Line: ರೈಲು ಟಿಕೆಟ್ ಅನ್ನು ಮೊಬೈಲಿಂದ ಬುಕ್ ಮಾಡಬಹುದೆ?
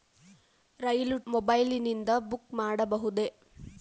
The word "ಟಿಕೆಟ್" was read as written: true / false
false